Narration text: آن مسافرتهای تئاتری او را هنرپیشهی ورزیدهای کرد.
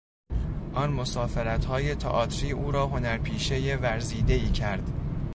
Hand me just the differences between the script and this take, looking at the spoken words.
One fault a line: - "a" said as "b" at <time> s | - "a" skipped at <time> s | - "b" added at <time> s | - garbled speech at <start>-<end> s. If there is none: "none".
none